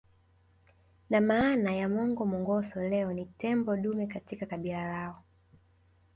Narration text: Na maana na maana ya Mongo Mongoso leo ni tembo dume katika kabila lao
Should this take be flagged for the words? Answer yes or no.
yes